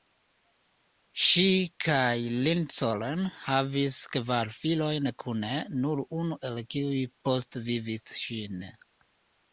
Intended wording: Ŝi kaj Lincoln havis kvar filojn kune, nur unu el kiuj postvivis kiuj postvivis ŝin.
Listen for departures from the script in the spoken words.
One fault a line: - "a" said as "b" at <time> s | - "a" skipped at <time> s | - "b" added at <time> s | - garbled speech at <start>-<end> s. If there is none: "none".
- "kiuj postvivis" skipped at 8.2 s